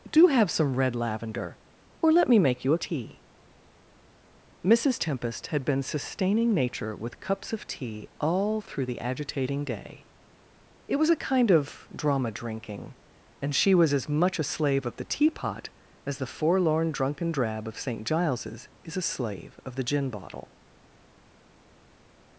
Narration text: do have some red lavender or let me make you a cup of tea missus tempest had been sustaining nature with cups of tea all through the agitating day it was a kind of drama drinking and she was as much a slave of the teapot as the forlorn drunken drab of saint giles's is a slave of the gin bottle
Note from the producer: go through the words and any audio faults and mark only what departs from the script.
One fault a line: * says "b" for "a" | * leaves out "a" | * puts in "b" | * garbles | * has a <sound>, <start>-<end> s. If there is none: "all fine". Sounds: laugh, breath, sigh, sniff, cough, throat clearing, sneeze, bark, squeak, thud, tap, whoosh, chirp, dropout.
* leaves out "cup of"